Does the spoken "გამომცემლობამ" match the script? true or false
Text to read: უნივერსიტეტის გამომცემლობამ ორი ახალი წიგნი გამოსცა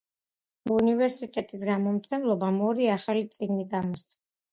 true